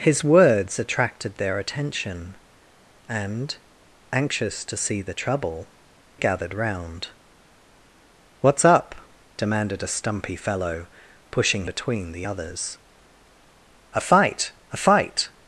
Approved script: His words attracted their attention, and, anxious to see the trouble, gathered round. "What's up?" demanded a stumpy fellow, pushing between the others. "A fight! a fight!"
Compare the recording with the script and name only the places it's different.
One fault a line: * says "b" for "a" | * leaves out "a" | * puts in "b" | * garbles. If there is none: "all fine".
all fine